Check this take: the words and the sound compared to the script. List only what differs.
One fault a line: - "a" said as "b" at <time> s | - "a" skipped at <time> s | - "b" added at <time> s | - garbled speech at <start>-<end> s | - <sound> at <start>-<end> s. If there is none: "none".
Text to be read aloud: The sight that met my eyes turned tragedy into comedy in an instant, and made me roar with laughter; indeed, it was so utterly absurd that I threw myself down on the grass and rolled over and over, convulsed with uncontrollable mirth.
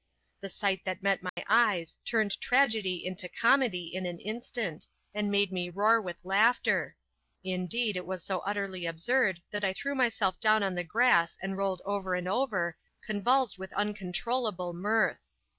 - dropout at 1.3-1.4 s